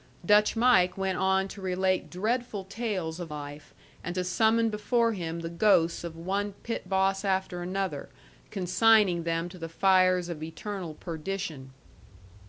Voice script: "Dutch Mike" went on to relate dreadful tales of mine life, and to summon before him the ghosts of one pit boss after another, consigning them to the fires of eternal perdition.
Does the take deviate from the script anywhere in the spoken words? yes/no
yes